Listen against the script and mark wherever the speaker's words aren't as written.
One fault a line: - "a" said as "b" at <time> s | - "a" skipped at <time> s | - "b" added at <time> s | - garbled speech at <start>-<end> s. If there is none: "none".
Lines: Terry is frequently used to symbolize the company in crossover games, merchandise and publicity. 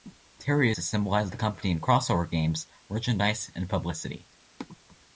- "is frequently used" skipped at 0.7 s